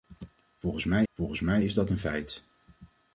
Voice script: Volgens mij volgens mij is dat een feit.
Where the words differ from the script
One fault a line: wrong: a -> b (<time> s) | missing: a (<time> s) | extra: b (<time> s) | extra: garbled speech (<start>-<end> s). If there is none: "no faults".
no faults